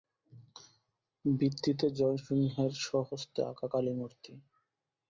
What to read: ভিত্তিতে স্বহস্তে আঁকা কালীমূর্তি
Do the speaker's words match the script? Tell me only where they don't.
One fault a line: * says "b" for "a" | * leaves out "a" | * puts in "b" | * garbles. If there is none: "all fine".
* puts in "জয়সিংহের"